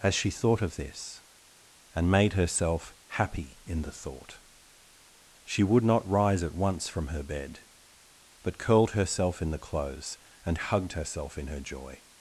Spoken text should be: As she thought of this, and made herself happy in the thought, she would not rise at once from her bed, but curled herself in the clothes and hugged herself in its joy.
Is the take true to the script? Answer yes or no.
no